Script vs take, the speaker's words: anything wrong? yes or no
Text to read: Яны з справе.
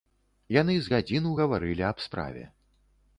yes